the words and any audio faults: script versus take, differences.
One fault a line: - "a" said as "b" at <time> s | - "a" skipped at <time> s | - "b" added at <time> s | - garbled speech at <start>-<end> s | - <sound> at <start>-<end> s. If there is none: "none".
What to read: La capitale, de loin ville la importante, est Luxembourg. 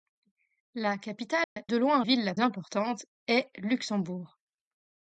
- dropout at 1.4-1.6 s